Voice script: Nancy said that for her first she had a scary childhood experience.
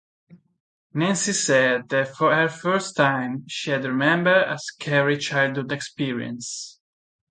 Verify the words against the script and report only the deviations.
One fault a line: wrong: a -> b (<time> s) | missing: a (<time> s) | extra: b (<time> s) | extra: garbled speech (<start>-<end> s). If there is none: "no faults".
extra: time (3.0 s)
extra: remembered (3.9 s)